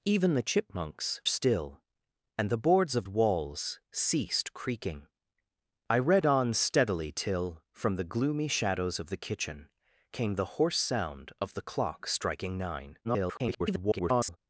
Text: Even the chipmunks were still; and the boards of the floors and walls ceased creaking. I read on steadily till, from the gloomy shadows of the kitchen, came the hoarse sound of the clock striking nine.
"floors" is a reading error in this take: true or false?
true